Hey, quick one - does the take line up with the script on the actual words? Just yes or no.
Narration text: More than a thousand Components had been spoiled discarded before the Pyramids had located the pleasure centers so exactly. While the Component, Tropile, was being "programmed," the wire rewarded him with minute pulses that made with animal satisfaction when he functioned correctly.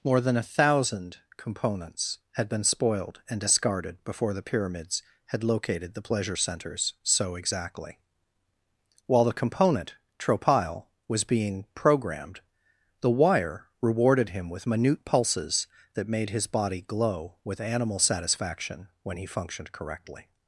no